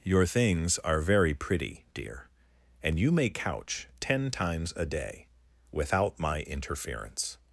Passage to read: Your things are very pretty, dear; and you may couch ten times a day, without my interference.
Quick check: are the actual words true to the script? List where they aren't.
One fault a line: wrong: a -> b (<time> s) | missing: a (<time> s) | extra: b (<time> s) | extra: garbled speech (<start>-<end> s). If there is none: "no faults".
no faults